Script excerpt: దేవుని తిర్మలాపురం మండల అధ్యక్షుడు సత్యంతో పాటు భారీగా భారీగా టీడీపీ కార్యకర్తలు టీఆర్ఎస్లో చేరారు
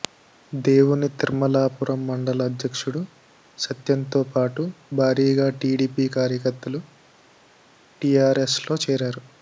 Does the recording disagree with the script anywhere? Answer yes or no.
yes